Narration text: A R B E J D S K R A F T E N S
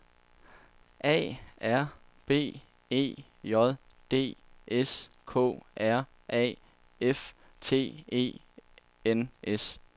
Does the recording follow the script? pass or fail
pass